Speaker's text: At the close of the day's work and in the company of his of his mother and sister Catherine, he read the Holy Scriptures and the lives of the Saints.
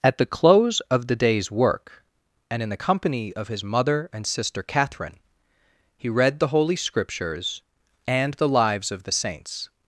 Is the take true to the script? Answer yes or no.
no